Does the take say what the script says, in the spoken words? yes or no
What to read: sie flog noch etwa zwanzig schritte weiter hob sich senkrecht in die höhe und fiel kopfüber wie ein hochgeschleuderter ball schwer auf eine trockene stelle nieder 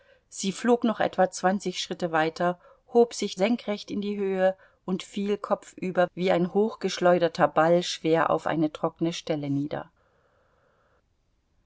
yes